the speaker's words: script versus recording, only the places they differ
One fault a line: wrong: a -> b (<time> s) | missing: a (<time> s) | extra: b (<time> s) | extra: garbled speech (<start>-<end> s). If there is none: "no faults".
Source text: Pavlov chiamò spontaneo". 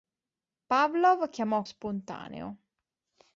no faults